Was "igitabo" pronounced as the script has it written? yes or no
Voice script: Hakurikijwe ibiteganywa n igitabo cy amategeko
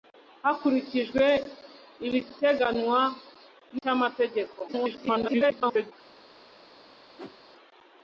no